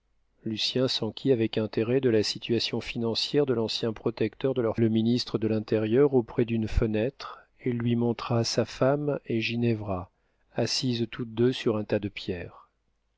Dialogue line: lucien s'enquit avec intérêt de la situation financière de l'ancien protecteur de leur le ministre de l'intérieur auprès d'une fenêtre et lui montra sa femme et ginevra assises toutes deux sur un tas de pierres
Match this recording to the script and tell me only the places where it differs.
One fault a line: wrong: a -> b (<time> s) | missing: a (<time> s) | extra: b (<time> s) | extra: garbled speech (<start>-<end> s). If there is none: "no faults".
no faults